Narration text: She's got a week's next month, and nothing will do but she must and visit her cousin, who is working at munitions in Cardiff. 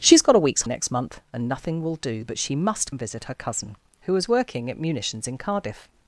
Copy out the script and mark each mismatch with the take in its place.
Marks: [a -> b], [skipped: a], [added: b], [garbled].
She's got a week's next month, and nothing will do but she must and visit her cousin, who is working at munitions in Cardiff.